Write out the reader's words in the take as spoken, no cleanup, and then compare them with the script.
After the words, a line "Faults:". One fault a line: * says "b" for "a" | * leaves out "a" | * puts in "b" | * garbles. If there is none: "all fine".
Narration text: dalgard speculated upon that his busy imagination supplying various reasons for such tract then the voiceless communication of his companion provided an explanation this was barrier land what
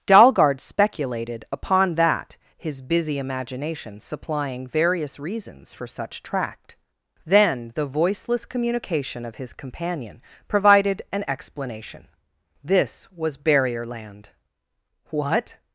dalgard speculated upon that his busy imagination supplying various reasons for such tract then the voiceless communication of his companion provided an explanation this was barrier land what
Faults:
all fine